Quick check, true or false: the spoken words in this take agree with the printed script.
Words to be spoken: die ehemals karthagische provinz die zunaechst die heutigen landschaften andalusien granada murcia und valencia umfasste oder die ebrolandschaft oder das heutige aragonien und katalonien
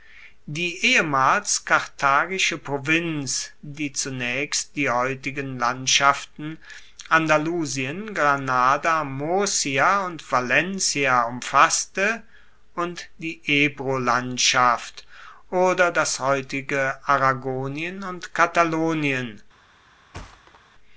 false